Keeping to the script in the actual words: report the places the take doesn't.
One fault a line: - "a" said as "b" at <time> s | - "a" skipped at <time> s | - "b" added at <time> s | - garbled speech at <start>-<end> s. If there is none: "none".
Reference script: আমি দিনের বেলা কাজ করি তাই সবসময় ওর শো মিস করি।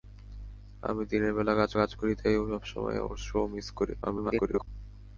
- "কাজ" added at 1.7 s
- garbled speech at 4.0-4.7 s